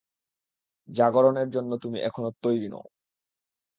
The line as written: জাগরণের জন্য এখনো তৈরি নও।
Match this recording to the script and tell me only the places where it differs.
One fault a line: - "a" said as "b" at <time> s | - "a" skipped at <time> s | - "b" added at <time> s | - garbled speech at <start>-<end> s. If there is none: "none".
- "তুমি" added at 1.8 s